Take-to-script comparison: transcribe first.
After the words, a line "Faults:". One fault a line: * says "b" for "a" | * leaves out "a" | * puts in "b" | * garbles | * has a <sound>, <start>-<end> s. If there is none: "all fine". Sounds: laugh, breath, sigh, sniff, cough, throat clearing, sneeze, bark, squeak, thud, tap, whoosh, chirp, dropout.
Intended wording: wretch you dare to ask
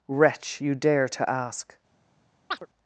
wretch you dare to ask
Faults:
* has a chirp, 2.5-2.7 s